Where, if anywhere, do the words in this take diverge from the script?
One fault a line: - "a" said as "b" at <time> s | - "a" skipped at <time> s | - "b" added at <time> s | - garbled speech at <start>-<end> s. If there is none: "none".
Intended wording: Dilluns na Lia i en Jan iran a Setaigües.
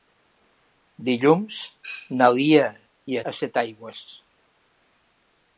- "en Jan iran" skipped at 3.2 s